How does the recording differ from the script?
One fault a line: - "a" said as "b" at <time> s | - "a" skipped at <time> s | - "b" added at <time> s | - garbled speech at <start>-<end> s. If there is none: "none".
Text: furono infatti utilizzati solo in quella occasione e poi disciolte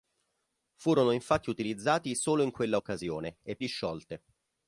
- "poi" skipped at 3.6 s